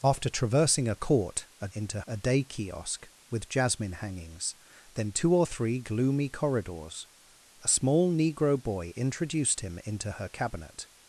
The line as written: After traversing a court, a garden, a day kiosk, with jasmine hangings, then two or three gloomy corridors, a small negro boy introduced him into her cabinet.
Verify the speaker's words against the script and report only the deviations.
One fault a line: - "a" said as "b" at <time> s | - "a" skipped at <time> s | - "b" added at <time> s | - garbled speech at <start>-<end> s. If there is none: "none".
- "garden" said as "into" at 1.7 s